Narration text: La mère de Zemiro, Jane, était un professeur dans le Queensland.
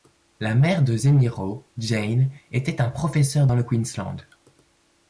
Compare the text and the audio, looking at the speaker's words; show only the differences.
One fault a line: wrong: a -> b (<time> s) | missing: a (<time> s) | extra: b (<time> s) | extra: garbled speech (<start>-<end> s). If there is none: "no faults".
no faults